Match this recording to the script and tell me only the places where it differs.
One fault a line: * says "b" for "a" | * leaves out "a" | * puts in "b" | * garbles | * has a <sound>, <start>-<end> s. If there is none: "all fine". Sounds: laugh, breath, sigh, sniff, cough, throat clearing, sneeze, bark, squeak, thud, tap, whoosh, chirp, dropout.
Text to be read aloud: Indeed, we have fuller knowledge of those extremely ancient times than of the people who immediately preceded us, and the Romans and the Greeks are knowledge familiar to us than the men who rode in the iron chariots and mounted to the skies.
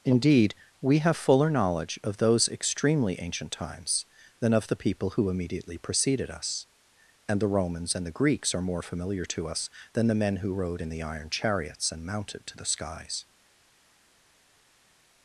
* says "more" for "knowledge"